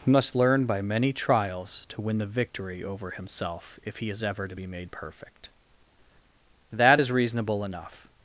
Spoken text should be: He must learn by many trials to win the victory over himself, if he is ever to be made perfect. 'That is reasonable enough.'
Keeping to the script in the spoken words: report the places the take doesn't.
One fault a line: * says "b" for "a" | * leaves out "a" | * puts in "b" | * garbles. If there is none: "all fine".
all fine